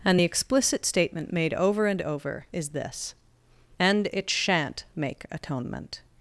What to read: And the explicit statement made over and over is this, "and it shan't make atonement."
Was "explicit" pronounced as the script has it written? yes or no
yes